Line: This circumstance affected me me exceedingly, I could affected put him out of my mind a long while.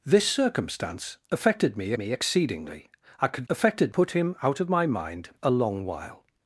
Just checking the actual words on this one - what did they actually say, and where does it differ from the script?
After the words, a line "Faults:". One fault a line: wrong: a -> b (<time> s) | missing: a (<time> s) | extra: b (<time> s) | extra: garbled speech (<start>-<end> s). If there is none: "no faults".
This circumstance affected me me exceedingly, I could affected put him out of my mind a long while.
Faults:
no faults